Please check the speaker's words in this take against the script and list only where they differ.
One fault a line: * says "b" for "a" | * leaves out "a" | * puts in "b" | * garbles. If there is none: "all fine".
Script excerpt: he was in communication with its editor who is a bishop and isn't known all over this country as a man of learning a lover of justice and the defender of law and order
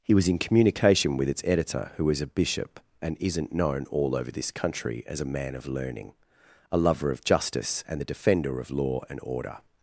all fine